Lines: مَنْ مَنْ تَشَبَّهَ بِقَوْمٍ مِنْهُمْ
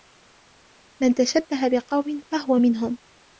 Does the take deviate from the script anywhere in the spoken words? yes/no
yes